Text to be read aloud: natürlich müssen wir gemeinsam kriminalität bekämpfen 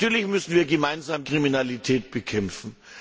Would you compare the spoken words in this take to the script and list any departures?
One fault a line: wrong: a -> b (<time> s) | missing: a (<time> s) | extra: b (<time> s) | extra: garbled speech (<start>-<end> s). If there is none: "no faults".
no faults